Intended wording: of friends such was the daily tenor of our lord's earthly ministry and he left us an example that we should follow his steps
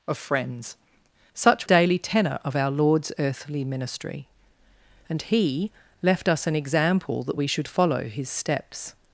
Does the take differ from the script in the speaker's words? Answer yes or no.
yes